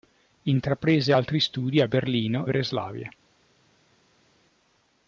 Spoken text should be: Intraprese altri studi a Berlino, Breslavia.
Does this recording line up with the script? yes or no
yes